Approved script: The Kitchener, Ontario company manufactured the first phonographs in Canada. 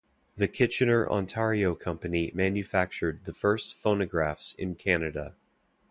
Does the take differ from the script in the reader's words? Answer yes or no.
no